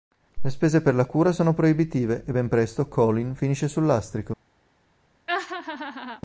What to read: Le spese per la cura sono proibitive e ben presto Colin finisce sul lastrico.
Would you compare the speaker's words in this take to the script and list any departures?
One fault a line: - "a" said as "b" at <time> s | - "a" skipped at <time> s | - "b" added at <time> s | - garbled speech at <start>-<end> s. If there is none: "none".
none